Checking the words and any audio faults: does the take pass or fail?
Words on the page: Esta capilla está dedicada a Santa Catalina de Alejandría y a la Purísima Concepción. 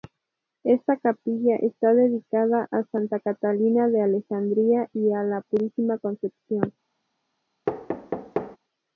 fail